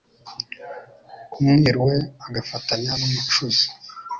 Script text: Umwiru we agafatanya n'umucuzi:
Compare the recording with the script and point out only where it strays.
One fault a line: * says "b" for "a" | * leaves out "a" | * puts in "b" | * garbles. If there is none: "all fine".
all fine